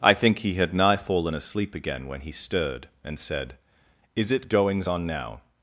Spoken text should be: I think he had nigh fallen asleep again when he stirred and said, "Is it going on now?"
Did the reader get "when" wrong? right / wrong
right